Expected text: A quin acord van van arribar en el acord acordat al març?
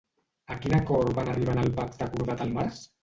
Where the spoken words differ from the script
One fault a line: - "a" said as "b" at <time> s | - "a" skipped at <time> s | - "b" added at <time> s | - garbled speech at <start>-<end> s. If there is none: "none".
- "van" skipped at 1.3 s
- "acord" said as "pacte" at 1.8 s